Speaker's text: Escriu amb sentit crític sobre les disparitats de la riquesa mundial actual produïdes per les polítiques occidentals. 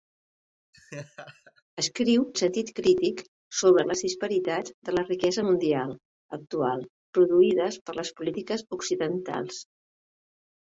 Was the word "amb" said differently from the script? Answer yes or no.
yes